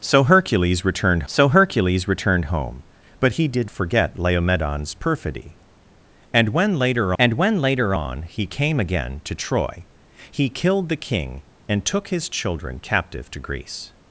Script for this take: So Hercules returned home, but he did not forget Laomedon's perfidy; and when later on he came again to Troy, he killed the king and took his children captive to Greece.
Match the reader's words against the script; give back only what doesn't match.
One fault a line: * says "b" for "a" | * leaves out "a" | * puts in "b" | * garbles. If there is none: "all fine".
* puts in "so Hercules returned"
* leaves out "not"
* puts in "and when later"